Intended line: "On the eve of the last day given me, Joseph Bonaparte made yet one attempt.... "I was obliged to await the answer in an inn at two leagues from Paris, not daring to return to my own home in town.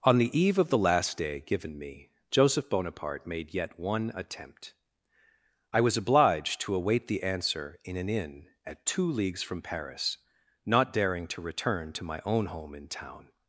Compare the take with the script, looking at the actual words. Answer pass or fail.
pass